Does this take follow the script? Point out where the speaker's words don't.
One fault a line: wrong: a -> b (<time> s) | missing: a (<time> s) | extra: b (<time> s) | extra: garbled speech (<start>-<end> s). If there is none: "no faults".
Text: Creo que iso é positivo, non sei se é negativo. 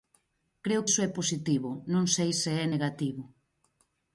missing: que (0.8 s)